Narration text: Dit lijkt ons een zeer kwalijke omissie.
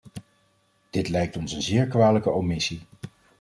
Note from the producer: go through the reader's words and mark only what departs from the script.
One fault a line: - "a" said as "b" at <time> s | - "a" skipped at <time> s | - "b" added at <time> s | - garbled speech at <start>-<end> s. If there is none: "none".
none